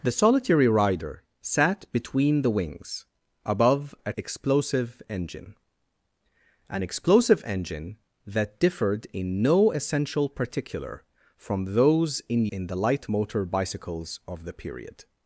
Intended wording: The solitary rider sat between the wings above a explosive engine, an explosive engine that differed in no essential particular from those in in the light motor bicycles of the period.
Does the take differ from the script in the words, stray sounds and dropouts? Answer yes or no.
no